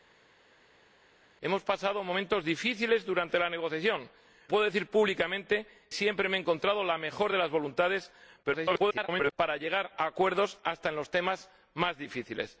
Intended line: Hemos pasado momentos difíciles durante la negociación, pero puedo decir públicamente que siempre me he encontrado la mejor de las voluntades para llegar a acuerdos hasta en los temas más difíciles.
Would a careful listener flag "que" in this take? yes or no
yes